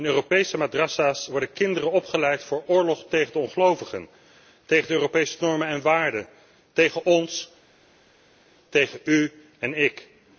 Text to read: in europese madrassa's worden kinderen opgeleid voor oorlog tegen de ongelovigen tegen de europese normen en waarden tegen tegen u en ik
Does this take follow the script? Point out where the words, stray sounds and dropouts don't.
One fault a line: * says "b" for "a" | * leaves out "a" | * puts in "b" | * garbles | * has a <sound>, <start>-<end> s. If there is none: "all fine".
* puts in "ons"